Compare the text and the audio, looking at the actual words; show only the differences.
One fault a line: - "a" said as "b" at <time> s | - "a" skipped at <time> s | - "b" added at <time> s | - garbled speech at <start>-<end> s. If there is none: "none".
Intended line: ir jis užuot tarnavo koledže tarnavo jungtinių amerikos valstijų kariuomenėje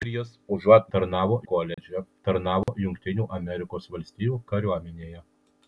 none